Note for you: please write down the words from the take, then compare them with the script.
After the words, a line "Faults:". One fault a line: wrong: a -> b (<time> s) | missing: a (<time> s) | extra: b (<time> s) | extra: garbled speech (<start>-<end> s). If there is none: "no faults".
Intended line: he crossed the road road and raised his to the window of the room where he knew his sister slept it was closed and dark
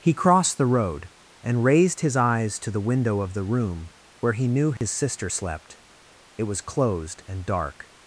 he crossed the road and raised his eyes to the window of the room where he knew his sister slept it was closed and dark
Faults:
missing: road (1.1 s)
extra: eyes (2.2 s)